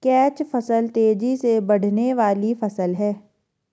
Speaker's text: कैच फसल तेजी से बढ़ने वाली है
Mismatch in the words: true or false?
true